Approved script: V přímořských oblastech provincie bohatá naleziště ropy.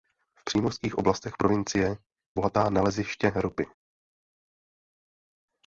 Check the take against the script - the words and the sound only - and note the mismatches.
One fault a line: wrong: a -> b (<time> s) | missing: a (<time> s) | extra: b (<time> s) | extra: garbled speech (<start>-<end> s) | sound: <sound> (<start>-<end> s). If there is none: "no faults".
no faults